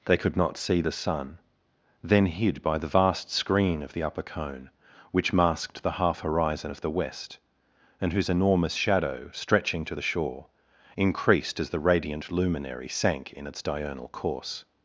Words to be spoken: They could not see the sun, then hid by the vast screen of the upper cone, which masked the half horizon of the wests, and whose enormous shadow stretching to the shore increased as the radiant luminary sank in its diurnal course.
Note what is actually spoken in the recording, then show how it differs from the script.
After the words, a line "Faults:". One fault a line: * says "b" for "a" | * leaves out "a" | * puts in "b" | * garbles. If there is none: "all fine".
They could not see the sun, then hid by the vast screen of the upper cone, which masked the half horizon of the west, and whose enormous shadow stretching to the shore increased as the radiant luminary sank in its diurnal course.
Faults:
* says "west" for "wests"